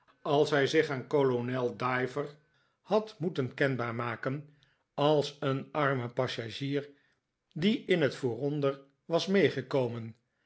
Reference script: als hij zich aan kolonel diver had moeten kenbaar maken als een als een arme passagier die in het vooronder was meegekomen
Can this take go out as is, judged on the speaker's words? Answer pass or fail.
fail